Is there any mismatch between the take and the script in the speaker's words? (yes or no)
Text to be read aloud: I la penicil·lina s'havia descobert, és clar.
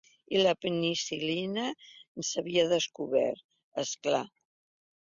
no